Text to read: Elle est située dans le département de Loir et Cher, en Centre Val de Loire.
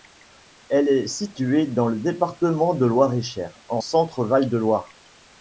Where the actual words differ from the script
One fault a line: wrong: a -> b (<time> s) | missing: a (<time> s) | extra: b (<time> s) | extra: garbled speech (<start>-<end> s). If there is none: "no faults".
no faults